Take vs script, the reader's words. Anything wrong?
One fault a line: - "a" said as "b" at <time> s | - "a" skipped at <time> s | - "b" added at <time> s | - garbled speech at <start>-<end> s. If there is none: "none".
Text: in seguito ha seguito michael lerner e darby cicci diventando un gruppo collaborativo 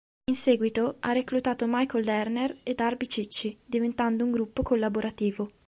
- "seguito" said as "reclutato" at 1.1 s